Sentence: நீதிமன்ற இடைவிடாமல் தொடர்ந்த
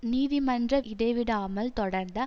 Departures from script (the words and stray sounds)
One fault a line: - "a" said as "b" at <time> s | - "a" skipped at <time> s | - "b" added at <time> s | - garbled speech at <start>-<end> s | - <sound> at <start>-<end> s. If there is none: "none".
none